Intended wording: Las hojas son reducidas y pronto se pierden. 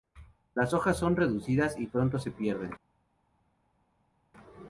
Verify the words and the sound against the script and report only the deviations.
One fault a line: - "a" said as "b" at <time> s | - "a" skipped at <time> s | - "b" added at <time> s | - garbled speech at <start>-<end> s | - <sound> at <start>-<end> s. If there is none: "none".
none